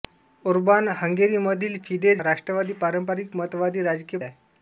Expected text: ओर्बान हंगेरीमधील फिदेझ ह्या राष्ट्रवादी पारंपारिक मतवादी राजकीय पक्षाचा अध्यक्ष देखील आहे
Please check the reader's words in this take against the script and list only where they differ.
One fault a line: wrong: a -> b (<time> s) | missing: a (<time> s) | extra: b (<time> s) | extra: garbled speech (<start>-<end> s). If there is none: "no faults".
missing: ह्या (2.2 s)
missing: पक्षाचा अध्यक्ष देखील (4.2 s)